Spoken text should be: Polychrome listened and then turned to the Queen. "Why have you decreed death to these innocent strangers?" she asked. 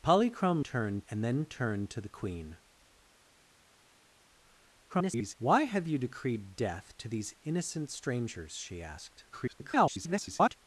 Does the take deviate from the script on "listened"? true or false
true